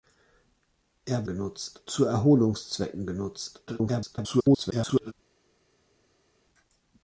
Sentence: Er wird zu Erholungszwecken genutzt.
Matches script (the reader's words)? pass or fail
fail